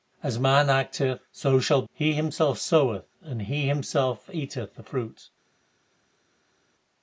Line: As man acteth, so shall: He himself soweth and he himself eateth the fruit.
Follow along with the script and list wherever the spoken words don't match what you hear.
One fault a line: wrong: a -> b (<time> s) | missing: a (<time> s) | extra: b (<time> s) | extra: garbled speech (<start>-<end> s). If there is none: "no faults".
no faults